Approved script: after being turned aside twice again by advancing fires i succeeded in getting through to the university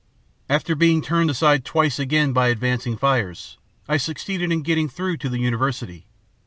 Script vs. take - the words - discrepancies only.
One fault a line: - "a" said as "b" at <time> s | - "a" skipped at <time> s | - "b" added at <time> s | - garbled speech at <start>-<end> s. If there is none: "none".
none